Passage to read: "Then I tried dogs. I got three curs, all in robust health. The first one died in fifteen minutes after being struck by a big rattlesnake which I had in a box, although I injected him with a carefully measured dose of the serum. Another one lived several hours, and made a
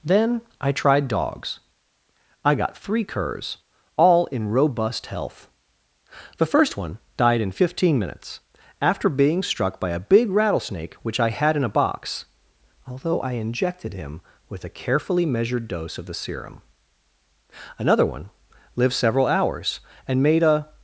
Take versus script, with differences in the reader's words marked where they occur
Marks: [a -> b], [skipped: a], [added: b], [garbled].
"Then I tried dogs. I got three curs, all in robust health. The first one died in fifteen minutes after being struck by a big rattlesnake which I had in a box, although I injected him with a carefully measured dose of the serum. Another one lived several hours, and made a